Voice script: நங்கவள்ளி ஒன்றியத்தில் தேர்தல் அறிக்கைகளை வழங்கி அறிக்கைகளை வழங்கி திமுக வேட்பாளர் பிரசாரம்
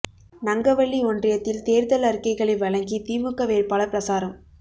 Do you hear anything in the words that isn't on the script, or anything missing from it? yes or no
yes